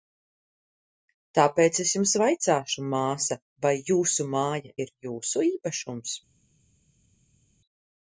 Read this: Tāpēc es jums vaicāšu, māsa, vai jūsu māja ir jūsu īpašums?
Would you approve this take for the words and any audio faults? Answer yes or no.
yes